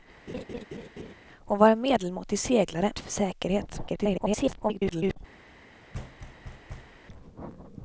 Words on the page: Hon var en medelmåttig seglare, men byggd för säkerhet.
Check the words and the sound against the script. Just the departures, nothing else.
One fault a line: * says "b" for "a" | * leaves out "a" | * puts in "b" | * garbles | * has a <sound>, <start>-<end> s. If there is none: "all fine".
* has a laugh, 0.3-1.1 s
* leaves out "men byggd"
* garbles
* has a thud, 5.9-7.0 s